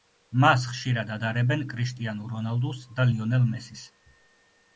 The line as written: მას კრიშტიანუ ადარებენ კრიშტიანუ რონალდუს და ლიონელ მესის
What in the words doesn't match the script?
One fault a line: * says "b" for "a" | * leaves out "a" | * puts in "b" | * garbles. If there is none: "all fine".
* says "ხშირად" for "კრიშტიანუ"